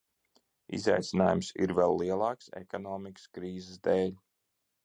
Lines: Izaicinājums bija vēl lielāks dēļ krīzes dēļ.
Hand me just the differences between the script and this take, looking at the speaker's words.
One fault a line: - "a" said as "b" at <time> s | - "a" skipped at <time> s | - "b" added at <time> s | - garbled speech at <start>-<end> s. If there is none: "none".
- "bija" said as "ir" at 1.6 s
- "dēļ" said as "ekonomikas" at 2.6 s